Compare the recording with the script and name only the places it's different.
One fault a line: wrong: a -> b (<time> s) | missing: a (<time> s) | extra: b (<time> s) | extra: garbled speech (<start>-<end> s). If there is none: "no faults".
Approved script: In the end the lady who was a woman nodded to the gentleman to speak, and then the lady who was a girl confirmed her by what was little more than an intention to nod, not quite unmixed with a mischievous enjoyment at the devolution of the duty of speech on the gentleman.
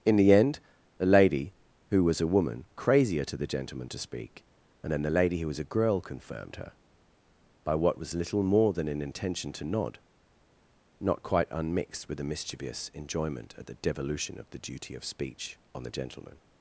wrong: nodded -> crazier (2.8 s)